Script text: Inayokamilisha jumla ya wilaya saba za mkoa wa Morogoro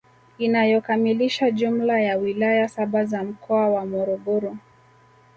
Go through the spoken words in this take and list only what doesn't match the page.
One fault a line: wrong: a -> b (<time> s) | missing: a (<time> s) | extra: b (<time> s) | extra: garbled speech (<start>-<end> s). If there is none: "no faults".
no faults